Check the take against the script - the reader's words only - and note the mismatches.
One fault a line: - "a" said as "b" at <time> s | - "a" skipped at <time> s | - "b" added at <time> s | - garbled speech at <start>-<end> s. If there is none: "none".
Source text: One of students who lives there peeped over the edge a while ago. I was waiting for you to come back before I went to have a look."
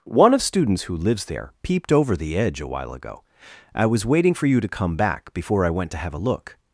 none